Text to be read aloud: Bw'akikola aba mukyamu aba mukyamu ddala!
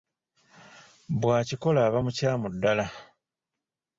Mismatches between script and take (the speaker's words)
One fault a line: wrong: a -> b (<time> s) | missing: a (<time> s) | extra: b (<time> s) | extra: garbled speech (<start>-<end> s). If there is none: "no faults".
missing: aba mukyamu (2.5 s)